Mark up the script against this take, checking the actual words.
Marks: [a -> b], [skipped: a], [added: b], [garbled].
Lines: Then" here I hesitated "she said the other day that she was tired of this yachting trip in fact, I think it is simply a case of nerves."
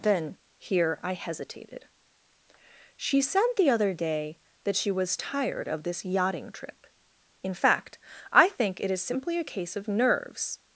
Then" here I hesitated "she said the other day that she was tired of this yachting trip in fact, I think it is simply a case of nerves."